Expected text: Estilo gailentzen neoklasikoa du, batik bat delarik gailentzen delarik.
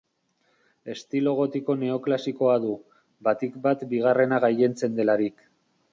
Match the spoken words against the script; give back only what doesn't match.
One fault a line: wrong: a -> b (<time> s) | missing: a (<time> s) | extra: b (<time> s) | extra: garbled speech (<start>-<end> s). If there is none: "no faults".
wrong: gailentzen -> gotiko (1.4 s)
wrong: delarik -> bigarrena (3.9 s)